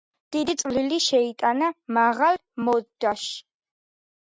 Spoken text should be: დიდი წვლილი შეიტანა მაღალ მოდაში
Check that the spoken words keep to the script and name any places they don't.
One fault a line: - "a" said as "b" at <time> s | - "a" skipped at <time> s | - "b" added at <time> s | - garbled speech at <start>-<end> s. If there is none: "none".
none